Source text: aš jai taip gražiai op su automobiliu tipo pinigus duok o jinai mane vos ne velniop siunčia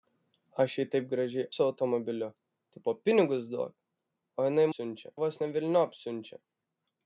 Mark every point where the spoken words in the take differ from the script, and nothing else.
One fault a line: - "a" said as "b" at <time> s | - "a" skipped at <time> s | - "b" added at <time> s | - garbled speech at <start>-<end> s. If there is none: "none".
- "op" skipped at 1.5 s
- "mane" said as "siunčia" at 4.7 s